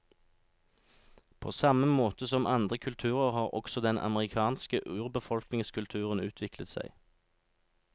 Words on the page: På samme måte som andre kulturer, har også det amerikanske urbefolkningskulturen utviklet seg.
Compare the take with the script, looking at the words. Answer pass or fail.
fail